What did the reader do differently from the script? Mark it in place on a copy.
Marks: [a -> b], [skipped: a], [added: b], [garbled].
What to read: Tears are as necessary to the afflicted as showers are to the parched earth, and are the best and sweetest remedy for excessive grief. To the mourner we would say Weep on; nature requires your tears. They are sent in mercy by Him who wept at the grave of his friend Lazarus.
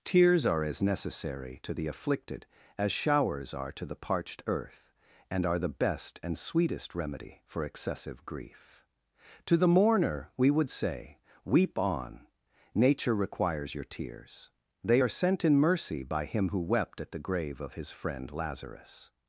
Tears are as necessary to the afflicted as showers are to the parched earth, and are the best and sweetest remedy for excessive grief. To the mourner we would say Weep on; nature requires your tears. They are sent in mercy by Him who wept at the grave of his friend Lazarus.